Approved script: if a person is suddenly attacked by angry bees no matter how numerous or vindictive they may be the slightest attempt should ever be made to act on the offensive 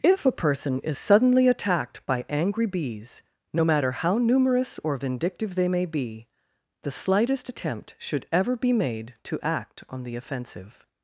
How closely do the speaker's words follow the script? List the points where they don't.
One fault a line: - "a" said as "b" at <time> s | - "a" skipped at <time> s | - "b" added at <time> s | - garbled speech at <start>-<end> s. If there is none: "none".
none